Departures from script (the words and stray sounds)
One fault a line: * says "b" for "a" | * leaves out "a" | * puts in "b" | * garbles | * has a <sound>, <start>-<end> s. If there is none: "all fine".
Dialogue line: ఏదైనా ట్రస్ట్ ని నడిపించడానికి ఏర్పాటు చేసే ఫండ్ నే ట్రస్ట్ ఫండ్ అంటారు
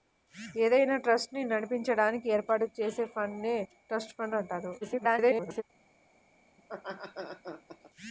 * garbles
* has a laugh, 6.6-7.9 s